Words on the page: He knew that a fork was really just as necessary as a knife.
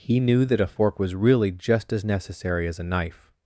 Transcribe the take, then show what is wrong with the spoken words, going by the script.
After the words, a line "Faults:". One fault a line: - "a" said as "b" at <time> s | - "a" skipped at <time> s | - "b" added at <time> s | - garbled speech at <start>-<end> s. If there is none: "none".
He knew that a fork was really just as necessary as a knife.
Faults:
none